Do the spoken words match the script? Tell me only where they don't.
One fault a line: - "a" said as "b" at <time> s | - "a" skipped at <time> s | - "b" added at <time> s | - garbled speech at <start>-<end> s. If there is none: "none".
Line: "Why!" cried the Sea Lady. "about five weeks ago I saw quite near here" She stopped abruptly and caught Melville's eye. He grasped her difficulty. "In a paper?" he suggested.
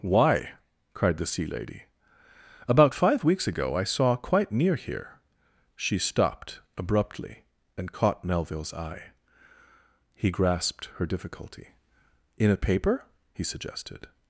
none